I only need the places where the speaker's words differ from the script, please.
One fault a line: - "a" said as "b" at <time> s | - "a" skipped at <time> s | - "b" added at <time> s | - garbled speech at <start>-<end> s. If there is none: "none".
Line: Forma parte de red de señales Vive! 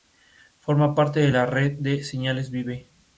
- "la" added at 1.3 s